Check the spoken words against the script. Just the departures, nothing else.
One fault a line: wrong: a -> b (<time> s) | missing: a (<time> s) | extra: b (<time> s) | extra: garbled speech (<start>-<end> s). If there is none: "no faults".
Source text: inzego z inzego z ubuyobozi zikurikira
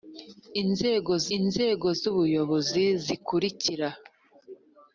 no faults